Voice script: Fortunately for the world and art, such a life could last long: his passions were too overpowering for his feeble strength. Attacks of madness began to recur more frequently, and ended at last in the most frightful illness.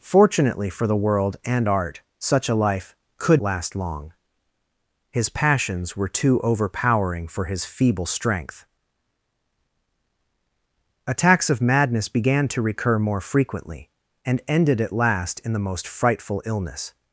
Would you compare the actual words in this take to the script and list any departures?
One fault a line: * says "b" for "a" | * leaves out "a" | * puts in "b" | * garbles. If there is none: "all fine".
all fine